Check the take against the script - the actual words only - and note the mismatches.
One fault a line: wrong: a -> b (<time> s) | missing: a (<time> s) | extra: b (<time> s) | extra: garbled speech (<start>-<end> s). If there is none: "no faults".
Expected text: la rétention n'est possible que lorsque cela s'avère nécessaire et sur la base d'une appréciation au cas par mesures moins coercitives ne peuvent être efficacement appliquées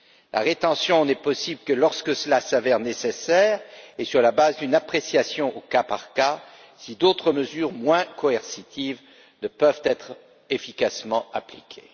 extra: cas si d'autres (6.1 s)